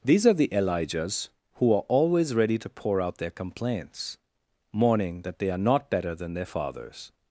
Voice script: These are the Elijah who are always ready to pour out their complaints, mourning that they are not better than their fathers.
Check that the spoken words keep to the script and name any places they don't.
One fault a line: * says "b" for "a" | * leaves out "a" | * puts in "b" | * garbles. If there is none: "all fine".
* says "Elijahs" for "Elijah"